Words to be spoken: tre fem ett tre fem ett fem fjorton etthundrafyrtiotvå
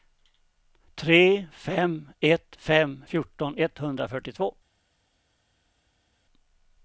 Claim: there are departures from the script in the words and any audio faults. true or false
true